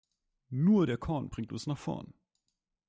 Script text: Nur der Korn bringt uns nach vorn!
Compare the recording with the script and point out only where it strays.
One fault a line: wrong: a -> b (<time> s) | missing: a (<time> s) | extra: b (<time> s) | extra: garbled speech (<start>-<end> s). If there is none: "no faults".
no faults